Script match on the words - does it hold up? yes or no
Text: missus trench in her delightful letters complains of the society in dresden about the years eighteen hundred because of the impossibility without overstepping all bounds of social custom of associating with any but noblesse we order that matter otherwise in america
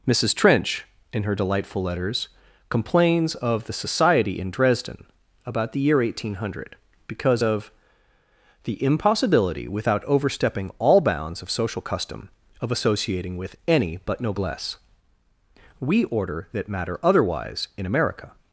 no